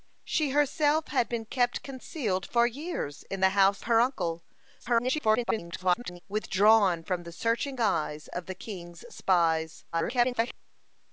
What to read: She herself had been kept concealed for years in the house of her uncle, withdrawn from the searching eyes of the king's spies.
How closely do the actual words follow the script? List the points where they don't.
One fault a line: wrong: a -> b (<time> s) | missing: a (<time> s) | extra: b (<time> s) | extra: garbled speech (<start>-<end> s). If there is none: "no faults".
missing: of (3.8 s)
extra: garbled speech (4.8-6.2 s)
extra: garbled speech (9.9-10.5 s)